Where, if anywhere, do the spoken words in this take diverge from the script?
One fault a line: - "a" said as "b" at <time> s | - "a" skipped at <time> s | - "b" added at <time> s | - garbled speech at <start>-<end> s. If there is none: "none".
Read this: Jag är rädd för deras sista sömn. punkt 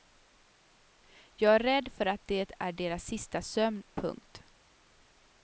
- "att det är" added at 2.0 s